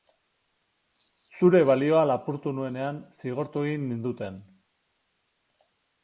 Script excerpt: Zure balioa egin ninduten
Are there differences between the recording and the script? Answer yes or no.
yes